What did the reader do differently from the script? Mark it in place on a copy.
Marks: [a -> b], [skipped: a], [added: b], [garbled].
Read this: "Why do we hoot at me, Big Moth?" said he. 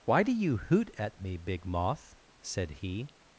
"Why do [we -> you] hoot at me, Big Moth?" said he.